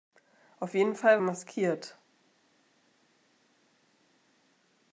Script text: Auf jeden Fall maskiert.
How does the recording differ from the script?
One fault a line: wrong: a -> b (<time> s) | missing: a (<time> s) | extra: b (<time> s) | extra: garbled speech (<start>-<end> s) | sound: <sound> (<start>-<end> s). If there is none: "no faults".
no faults